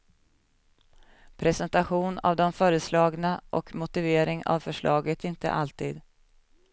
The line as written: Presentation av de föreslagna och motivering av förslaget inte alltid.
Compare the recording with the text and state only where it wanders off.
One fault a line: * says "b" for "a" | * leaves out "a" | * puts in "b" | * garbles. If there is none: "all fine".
all fine